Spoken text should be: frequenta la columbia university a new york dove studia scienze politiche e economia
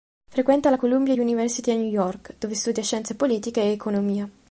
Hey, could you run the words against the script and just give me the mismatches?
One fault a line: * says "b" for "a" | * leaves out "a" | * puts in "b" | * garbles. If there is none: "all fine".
all fine